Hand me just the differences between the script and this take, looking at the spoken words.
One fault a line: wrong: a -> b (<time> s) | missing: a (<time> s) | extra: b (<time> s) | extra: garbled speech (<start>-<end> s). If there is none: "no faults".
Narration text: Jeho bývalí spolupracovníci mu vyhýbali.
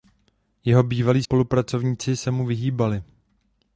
extra: se (2.2 s)